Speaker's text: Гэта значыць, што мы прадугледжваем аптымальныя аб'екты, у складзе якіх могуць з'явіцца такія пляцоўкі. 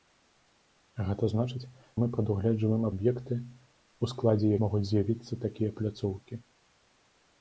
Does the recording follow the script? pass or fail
fail